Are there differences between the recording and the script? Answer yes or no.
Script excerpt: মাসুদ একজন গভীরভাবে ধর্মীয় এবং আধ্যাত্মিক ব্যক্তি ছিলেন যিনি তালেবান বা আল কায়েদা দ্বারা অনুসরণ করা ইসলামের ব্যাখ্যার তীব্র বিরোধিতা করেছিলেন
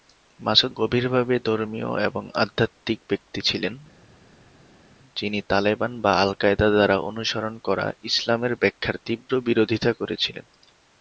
yes